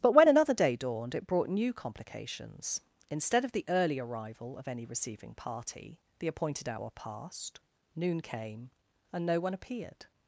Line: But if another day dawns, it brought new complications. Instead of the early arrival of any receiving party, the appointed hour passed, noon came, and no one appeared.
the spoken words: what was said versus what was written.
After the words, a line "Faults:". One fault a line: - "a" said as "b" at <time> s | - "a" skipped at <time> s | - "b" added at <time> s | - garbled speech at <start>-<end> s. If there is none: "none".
But when another day dawned, it brought new complications. Instead of the early arrival of any receiving party, the appointed hour passed, noon came, and no one appeared.
Faults:
- "if" said as "when" at 0.1 s
- "dawns" said as "dawned" at 0.8 s